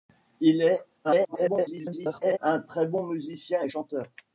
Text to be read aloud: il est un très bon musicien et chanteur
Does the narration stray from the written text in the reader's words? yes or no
yes